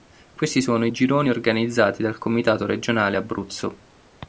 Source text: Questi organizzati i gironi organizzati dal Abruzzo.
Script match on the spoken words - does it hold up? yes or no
no